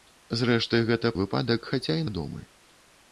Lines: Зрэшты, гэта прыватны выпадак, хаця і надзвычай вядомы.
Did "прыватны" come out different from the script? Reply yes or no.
yes